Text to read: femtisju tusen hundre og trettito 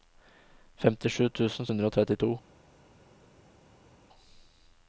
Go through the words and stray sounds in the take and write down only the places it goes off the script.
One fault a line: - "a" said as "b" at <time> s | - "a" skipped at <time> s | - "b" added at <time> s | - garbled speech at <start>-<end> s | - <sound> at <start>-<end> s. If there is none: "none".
none